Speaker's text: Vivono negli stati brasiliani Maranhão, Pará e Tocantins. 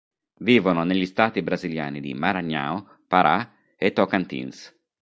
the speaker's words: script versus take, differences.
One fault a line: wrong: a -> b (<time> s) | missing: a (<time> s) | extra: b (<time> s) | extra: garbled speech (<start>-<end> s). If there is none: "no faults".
extra: di (2.0 s)